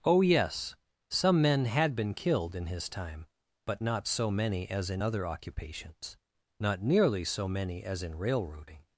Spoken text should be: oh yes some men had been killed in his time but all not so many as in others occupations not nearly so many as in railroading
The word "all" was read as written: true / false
false